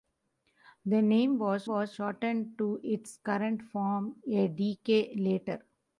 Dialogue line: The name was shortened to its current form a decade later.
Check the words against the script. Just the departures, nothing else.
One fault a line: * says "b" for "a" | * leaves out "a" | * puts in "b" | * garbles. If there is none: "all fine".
* puts in "was"